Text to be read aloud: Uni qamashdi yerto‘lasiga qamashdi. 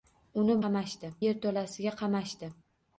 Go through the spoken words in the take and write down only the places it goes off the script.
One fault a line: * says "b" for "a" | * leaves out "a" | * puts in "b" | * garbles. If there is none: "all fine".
all fine